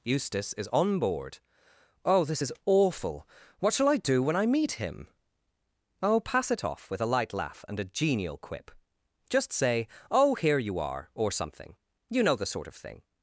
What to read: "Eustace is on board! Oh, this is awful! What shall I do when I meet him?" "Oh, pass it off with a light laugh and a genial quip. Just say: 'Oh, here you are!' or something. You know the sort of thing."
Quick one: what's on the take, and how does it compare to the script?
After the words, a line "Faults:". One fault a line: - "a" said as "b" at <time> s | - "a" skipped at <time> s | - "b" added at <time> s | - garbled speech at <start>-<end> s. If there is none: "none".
"Eustace is on board! Oh, this is awful! What shall I do when I meet him?" "Oh, pass it off with a light laugh and a genial quip. Just say: 'Oh, here you are!' or something. You know the sort of thing."
Faults:
none